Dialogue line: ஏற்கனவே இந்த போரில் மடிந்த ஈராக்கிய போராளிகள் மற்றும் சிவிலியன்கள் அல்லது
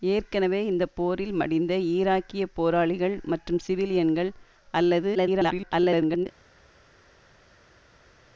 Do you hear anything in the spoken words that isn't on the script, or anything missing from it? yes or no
yes